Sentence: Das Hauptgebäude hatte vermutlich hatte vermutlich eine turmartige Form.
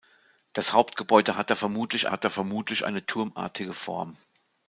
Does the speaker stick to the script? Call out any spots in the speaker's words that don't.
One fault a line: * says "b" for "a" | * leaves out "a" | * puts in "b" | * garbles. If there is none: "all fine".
all fine